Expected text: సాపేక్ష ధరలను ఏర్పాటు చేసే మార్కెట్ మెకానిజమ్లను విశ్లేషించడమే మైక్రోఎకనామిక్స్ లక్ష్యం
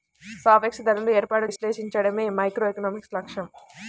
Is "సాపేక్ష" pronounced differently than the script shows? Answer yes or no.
no